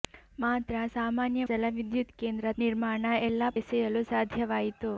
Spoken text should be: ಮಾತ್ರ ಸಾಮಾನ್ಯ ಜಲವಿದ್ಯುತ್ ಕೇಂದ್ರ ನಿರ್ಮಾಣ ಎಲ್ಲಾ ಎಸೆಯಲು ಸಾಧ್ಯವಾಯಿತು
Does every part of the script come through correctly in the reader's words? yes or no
yes